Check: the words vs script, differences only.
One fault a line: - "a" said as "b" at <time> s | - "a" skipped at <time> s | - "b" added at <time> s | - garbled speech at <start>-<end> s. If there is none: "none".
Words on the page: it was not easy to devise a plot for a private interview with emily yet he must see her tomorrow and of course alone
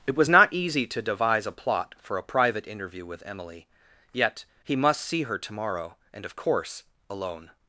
none